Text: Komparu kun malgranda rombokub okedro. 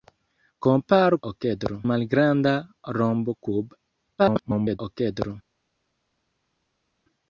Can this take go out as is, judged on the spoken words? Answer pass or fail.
fail